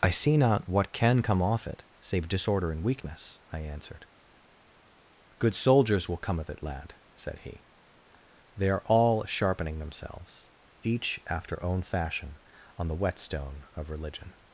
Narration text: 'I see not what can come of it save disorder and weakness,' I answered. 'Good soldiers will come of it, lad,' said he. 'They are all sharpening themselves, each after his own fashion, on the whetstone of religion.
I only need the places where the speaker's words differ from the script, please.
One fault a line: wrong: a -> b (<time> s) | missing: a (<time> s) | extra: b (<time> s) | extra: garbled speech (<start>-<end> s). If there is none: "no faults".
wrong: of -> off (1.4 s)
missing: his (11.6 s)